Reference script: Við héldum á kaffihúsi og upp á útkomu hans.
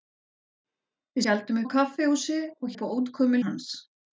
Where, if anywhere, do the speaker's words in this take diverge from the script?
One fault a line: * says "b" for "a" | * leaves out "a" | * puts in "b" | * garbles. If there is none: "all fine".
all fine